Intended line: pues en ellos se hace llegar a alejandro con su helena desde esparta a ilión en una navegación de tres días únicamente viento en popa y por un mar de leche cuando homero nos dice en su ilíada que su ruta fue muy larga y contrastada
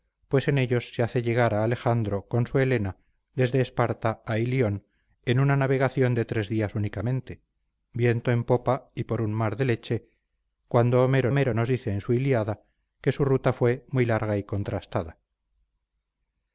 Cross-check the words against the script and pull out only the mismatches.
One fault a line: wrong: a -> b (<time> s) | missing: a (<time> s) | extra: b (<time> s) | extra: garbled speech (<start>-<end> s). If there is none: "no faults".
extra: homero (11.3 s)